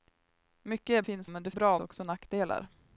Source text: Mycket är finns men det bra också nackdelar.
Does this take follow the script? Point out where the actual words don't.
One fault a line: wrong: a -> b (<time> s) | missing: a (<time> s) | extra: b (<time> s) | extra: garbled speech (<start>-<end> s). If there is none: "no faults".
no faults